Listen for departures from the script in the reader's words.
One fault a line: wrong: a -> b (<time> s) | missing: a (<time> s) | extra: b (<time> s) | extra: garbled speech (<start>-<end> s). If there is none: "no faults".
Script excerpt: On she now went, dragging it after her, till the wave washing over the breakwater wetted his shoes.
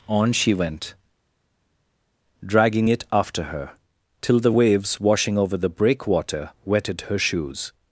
missing: now (0.5 s)
wrong: wave -> waves (4.5 s)
wrong: his -> her (7.0 s)